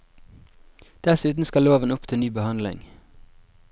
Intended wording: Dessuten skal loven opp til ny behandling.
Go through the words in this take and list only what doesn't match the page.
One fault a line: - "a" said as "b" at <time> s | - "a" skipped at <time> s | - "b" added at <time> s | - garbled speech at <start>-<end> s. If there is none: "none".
none